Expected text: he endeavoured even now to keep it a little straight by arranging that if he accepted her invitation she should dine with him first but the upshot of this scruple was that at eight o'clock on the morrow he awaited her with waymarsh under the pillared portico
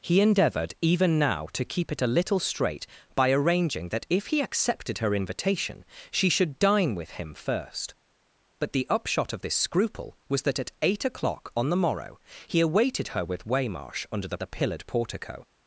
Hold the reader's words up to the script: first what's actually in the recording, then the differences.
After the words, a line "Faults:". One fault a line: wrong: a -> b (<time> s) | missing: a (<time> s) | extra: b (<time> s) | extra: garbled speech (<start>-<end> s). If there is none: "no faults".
he endeavoured even now to keep it a little straight by arranging that if he accepted her invitation she should dine with him first but the upshot of this scruple was that at eight o'clock on the morrow he awaited her with waymarsh under the the pillared portico
Faults:
extra: the (14.4 s)